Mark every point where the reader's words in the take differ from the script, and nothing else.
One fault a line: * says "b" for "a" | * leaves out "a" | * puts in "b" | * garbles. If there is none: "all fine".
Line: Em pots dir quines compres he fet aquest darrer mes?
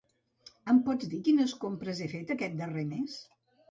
all fine